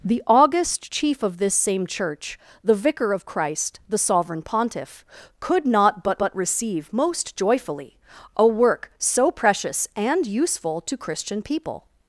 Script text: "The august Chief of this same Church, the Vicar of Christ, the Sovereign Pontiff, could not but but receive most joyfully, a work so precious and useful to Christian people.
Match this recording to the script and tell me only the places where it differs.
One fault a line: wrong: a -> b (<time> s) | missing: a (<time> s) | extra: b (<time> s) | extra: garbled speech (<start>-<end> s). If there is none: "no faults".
no faults